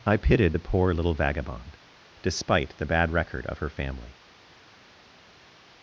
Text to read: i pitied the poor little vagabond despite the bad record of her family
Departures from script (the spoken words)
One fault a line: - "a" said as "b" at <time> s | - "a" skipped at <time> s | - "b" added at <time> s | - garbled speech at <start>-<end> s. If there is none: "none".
none